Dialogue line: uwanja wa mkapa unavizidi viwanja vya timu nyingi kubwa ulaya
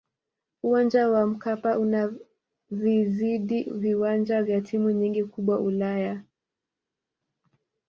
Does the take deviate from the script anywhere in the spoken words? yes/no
no